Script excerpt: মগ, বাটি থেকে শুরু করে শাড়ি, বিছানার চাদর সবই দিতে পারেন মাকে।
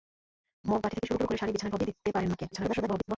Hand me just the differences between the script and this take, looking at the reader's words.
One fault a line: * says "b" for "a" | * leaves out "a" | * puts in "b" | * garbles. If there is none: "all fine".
* puts in "শুরু"
* leaves out "চাদর"
* garbles